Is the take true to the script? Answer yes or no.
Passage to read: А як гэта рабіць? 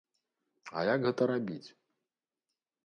yes